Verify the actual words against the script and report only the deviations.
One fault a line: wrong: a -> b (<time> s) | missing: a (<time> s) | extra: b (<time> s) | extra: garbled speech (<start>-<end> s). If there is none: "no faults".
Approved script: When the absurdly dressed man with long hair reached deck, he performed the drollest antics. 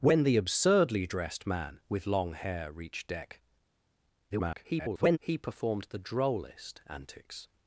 extra: garbled speech (4.3-5.2 s)